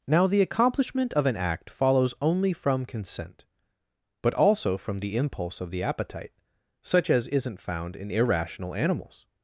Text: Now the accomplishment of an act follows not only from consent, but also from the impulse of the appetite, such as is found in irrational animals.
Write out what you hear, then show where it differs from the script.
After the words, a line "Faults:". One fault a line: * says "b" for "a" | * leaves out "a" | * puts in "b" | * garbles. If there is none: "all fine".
Now the accomplishment of an act follows only from consent, but also from the impulse of the appetite, such as isn't found in irrational animals.
Faults:
* leaves out "not"
* says "isn't" for "is"